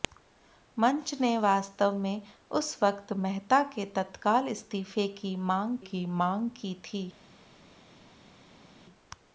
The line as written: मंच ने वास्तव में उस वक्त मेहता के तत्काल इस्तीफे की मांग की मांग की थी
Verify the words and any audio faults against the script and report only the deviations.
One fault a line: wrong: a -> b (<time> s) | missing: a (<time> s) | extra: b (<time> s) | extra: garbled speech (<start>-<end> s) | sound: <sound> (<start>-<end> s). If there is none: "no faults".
no faults